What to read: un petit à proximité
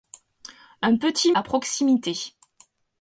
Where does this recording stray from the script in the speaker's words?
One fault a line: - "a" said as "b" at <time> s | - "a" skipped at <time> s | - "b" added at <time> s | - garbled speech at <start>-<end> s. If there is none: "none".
none